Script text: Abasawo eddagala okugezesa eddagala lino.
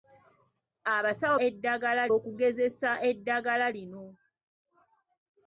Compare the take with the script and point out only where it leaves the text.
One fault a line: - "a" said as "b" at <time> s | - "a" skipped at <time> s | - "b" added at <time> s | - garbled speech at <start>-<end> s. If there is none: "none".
none